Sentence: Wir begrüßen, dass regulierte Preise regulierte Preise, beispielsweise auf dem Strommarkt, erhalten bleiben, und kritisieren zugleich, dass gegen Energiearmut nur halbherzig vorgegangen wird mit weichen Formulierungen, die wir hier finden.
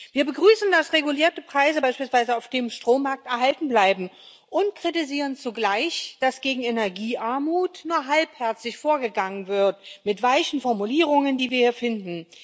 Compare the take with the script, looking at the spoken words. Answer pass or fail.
fail